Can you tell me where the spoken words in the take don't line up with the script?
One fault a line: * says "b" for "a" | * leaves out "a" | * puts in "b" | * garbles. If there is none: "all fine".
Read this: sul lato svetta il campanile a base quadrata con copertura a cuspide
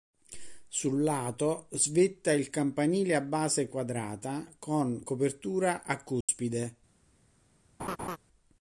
all fine